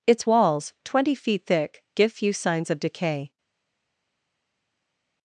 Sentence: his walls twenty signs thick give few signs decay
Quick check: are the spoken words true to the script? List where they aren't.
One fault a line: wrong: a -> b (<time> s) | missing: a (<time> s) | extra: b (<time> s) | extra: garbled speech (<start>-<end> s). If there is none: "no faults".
wrong: his -> its (0.1 s)
wrong: signs -> feet (1.1 s)
extra: of (2.7 s)